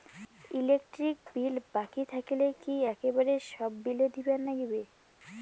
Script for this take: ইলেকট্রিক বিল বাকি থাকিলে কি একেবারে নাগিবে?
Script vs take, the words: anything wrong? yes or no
yes